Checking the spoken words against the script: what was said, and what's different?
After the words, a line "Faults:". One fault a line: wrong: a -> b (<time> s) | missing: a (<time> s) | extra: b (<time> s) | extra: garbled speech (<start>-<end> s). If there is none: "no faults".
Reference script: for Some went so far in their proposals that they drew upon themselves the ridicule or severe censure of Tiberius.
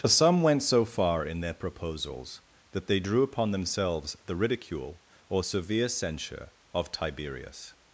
for Some went so far in their proposals that they drew upon themselves the ridicule or severe censure of Tiberius.
Faults:
no faults